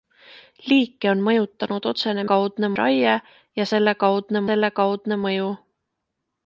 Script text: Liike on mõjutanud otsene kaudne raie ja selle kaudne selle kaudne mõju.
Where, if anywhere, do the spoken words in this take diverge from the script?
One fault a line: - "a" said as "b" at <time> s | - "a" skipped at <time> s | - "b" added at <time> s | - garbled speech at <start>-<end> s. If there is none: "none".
none